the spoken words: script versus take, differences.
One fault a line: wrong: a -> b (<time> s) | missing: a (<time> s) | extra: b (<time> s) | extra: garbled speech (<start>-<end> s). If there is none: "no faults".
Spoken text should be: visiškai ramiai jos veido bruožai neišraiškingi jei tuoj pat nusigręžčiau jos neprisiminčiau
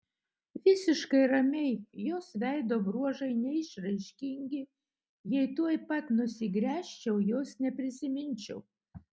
no faults